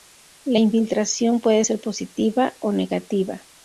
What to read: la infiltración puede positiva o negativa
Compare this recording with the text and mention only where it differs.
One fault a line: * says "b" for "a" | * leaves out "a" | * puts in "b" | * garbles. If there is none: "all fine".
* puts in "ser"